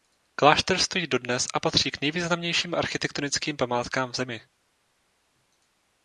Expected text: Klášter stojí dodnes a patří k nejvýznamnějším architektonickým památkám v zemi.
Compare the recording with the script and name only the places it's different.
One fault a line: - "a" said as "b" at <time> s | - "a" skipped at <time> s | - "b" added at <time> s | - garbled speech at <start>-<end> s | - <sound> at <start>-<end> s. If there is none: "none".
none